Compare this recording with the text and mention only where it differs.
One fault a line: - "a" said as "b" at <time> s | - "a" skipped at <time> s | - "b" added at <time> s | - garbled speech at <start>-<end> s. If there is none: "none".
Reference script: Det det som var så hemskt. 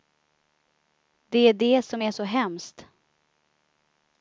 - "är" added at 1.4 s
- "var" said as "är" at 2.0 s